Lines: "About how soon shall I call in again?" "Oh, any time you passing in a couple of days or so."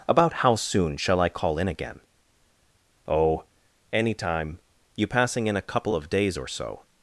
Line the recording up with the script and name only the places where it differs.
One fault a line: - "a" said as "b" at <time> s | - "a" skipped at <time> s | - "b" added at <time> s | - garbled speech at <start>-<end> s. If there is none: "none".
none